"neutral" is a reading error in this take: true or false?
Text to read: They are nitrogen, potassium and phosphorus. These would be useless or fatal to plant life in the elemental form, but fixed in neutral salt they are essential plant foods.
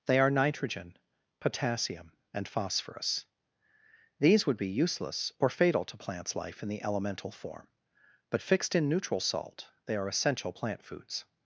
false